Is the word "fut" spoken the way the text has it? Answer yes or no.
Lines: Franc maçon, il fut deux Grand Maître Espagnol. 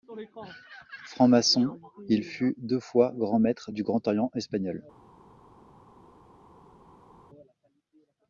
yes